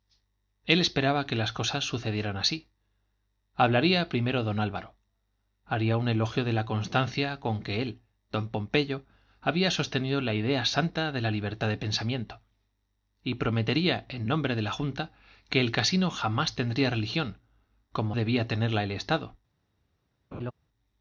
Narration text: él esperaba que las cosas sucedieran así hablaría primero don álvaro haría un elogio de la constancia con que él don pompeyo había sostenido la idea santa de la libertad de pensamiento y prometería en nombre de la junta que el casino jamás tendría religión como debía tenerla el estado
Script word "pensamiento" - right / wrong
right